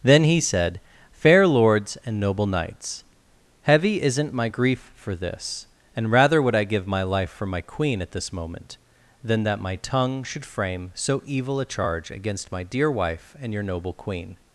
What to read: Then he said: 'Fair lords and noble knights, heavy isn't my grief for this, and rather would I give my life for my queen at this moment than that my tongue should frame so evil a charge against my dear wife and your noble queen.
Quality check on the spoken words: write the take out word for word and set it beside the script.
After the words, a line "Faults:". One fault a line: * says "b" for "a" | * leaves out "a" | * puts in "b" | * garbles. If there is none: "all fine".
Then he said: 'Fair lords and noble knights, heavy isn't my grief for this, and rather would I give my life for my queen at this moment than that my tongue should frame so evil a charge against my dear wife and your noble queen.
Faults:
all fine